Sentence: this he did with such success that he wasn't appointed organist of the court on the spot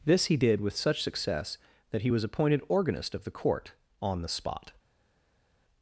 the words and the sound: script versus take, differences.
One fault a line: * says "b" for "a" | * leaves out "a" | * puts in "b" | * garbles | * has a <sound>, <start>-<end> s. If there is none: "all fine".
* says "was" for "wasn't"